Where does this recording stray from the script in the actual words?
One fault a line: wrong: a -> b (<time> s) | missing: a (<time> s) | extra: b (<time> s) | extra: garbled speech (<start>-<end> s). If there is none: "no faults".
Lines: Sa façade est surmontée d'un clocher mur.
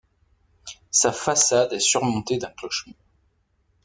no faults